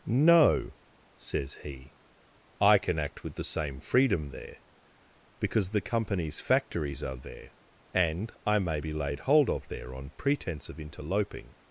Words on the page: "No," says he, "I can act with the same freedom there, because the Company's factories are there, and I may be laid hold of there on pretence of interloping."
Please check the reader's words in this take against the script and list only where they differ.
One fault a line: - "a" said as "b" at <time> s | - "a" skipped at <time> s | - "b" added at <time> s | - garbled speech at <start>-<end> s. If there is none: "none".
none